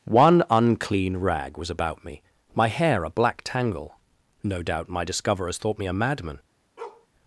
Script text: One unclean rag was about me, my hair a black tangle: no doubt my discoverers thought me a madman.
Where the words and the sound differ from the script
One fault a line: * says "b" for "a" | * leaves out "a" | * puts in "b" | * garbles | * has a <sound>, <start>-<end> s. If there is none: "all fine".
* has a bark, 6.8-7.1 s